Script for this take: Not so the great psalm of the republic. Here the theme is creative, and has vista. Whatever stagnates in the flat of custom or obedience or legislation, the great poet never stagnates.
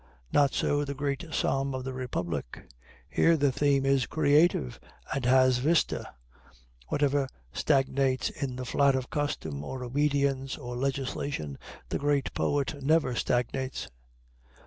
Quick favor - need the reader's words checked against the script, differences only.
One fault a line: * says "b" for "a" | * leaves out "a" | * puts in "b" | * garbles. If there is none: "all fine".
all fine